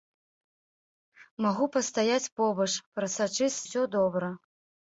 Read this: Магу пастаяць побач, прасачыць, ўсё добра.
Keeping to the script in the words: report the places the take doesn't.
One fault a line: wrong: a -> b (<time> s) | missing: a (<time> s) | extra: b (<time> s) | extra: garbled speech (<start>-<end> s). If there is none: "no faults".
no faults